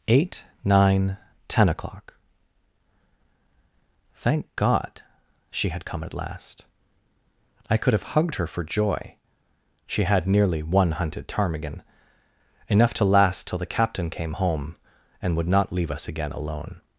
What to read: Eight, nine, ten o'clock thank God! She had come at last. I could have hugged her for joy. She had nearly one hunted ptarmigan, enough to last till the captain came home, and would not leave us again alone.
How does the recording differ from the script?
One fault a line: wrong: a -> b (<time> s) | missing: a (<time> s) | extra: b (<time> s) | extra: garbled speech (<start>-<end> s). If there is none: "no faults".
no faults